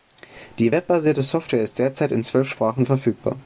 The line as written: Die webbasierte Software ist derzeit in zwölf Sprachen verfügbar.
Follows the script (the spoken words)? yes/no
yes